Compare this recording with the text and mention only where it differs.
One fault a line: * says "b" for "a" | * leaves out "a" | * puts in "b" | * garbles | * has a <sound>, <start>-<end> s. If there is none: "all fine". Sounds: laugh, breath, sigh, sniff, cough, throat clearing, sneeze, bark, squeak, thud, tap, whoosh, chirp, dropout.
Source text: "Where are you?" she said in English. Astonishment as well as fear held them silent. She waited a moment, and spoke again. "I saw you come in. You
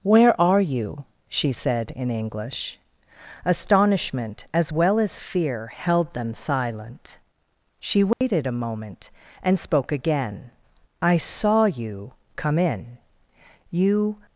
* has a dropout, 8.1-8.2 s